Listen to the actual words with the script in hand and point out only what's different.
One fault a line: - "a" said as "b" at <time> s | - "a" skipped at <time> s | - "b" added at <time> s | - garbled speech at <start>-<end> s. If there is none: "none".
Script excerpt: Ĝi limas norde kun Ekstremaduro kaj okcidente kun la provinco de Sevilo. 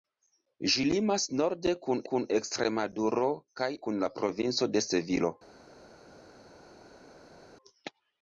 - "kun" added at 2.1 s
- "okcidente" skipped at 3.7 s